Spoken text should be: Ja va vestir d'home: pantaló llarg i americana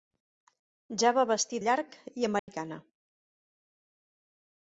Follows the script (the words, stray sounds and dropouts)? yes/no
no